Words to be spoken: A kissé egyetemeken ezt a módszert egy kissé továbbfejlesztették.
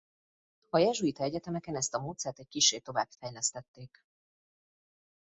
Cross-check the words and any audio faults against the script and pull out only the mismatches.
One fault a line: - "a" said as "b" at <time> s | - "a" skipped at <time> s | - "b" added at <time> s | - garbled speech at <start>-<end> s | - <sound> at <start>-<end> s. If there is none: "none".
- "kissé" said as "jezsuita" at 0.8 s